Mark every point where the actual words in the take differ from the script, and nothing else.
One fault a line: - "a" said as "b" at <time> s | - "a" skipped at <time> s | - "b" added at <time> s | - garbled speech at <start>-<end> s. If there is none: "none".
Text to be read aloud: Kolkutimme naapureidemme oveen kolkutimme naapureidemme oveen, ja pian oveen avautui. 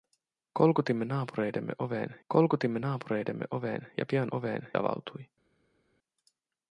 none